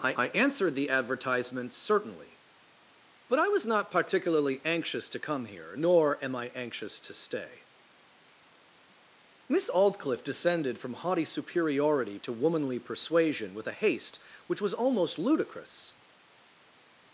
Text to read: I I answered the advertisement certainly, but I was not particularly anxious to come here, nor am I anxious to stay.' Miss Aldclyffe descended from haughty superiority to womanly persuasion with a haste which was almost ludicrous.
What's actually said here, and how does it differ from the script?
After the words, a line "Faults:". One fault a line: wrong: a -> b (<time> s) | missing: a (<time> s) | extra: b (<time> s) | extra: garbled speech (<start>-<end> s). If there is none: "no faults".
I I answered the advertisement certainly, but I was not particularly anxious to come here, nor am I anxious to stay.' Miss Aldclyffe descended from haughty superiority to womanly persuasion with a haste which was almost ludicrous.
Faults:
no faults